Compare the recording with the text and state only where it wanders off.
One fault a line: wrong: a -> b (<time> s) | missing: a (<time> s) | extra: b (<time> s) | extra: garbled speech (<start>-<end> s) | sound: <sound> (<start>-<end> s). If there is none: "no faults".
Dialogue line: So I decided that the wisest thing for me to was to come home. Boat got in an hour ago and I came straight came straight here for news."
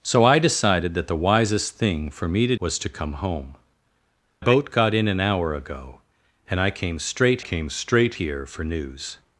no faults